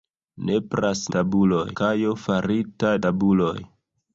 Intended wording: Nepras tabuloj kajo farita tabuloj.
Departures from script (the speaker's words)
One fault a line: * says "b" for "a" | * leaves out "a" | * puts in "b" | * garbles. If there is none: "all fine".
all fine